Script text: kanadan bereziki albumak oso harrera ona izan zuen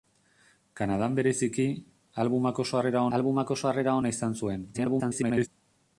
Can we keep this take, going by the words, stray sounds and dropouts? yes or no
no